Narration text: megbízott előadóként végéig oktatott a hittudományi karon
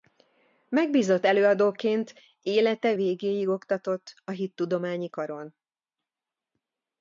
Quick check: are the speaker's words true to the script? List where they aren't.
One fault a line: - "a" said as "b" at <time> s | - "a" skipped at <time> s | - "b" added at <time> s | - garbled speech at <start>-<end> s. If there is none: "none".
- "élete" added at 2.4 s